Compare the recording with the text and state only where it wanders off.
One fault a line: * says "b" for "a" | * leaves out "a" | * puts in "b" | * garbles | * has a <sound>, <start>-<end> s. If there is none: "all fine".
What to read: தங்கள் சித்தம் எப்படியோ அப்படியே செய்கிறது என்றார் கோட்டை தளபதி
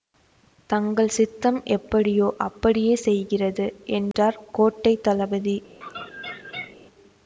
* has a dropout, 4.1-4.1 s
* has a laugh, 5.8-6.8 s